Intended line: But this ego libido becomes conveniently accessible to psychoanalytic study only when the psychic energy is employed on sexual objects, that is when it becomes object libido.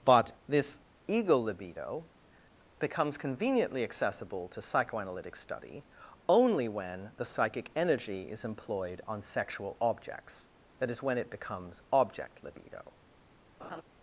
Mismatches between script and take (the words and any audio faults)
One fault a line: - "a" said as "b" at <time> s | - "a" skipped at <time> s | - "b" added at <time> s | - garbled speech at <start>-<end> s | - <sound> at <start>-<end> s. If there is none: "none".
- laugh at 13.6-13.8 s